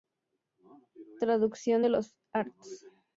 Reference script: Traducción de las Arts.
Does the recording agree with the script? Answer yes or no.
no